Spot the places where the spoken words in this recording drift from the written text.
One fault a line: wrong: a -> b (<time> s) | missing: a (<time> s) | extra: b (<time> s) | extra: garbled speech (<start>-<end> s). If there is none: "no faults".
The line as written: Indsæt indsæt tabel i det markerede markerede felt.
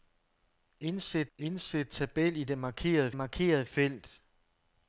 no faults